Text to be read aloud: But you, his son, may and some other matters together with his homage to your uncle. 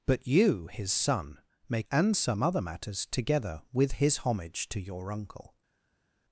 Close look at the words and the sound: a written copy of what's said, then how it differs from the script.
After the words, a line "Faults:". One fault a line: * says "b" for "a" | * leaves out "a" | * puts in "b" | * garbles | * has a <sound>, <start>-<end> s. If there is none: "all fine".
But you, his son, may and some other matters together with his homage to your uncle.
Faults:
all fine